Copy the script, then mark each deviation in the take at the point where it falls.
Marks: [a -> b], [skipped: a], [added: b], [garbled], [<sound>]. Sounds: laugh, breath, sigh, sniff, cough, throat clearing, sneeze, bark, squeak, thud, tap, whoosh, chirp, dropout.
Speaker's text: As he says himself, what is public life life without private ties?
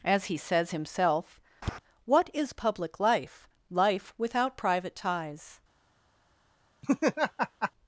As he says himself, [tap] what is public life life without private ties? [laugh]